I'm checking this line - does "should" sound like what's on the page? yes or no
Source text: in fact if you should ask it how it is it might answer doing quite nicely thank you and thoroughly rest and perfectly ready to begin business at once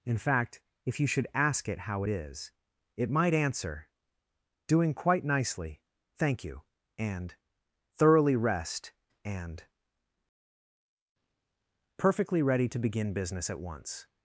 yes